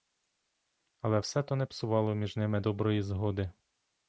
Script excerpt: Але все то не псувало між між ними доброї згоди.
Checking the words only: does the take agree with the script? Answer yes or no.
no